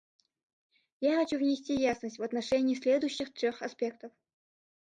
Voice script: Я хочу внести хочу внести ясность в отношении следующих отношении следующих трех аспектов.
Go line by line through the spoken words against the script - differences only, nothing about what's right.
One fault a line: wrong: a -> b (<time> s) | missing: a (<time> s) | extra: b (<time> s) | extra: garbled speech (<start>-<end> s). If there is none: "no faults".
missing: хочу внести (1.8 s)
missing: отношении следующих (3.4 s)